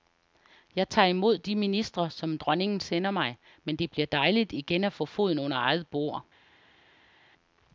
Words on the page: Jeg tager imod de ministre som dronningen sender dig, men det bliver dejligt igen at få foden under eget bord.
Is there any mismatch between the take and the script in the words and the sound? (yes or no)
yes